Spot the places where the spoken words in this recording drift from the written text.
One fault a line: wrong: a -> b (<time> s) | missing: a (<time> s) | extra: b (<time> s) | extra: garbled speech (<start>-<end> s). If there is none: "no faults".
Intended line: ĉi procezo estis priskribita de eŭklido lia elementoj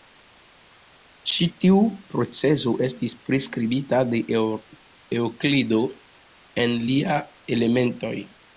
extra: tiu (1.6 s)
extra: en (6.7 s)